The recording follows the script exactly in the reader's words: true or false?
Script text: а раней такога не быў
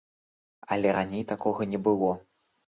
false